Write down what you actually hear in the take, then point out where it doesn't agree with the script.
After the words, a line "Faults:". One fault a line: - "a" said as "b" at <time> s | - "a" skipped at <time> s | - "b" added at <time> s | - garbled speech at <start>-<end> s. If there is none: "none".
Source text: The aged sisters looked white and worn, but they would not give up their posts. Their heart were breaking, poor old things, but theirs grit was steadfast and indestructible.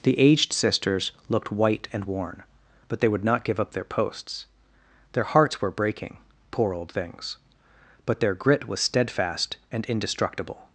The aged sisters looked white and worn, but they would not give up their posts. Their hearts were breaking, poor old things, but their grit was steadfast and indestructible.
Faults:
- "heart" said as "hearts" at 5.2 s
- "theirs" said as "their" at 8.2 s